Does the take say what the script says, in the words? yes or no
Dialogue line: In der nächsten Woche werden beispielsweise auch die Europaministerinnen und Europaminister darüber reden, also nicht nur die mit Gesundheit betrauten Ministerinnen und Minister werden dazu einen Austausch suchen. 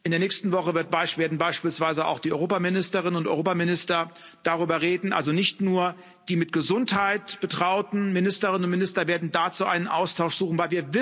yes